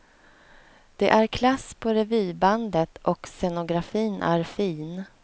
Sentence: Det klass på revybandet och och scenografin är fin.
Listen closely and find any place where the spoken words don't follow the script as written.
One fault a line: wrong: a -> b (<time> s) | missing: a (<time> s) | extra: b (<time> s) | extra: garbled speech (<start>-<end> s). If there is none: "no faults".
extra: är (1.1 s)
missing: och (3.3 s)